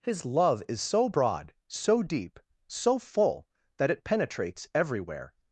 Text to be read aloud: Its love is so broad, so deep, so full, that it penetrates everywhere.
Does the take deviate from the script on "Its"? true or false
true